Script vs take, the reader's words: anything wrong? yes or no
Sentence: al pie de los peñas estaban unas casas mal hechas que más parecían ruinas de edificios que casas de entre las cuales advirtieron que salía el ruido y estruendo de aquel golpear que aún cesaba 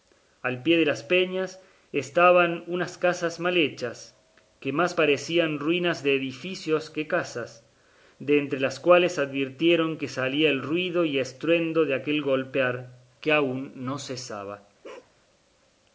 yes